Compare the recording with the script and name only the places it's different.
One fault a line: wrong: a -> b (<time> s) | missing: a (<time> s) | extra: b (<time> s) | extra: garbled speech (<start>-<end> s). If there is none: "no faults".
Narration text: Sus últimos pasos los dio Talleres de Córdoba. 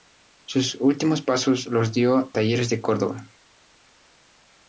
no faults